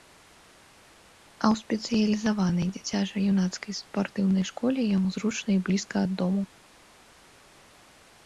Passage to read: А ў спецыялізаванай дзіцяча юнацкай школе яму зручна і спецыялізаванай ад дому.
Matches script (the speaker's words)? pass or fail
fail